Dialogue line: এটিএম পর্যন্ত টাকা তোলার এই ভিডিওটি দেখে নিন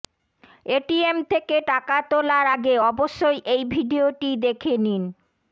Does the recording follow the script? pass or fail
fail